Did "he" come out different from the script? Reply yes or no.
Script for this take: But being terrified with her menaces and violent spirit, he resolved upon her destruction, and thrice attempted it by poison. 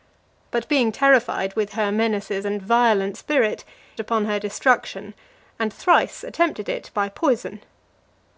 yes